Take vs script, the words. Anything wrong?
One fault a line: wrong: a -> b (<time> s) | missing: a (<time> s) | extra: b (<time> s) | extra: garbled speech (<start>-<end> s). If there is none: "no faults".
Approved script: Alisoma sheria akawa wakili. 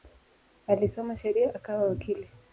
no faults